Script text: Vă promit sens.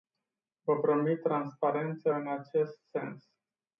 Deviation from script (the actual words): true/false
true